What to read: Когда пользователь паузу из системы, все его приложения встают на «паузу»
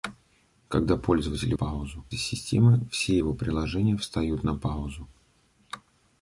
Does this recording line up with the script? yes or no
yes